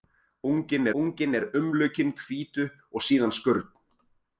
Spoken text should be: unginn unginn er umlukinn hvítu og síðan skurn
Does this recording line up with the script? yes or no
yes